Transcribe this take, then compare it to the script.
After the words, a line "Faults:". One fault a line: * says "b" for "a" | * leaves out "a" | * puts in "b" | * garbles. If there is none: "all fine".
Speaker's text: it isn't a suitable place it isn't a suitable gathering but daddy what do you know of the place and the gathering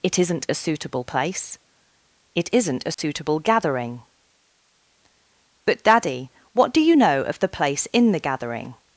it isn't a suitable place it isn't a suitable gathering but daddy what do you know of the place in the gathering
Faults:
* says "in" for "and"